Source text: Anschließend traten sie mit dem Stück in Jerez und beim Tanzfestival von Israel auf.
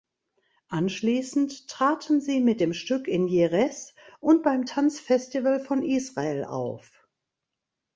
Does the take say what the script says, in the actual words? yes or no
yes